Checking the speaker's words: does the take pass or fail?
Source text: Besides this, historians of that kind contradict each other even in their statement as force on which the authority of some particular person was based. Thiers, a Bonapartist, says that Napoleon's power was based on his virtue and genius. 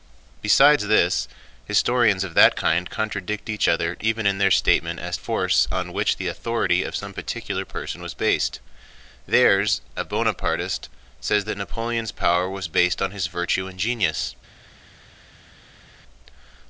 pass